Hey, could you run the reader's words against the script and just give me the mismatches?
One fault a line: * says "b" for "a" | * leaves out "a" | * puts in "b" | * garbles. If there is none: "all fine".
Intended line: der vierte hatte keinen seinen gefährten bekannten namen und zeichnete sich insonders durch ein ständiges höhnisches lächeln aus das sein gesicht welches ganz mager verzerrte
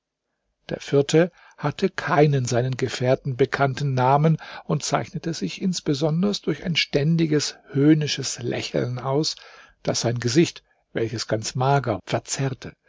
all fine